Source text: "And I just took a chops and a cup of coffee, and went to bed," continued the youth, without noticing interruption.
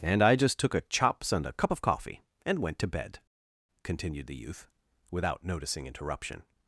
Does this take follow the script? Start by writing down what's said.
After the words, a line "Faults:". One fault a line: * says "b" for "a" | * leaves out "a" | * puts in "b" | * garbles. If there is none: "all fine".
"And I just took a chops and a cup of coffee, and went to bed," continued the youth, without noticing interruption.
Faults:
all fine